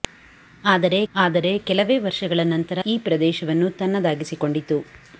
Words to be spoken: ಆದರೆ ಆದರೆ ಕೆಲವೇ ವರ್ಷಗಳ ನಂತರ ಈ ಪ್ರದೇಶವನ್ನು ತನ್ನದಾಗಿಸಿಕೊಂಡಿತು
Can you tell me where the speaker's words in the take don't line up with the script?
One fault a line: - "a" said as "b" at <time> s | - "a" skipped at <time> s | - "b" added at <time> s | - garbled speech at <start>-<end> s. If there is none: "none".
none